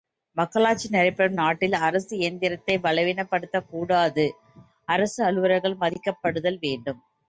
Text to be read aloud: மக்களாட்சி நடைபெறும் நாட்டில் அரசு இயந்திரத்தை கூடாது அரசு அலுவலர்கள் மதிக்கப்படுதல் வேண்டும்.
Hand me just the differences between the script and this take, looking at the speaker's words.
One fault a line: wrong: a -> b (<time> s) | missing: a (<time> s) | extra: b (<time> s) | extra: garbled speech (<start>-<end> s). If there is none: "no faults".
extra: பலவீனப்படுத்தக் (2.8 s)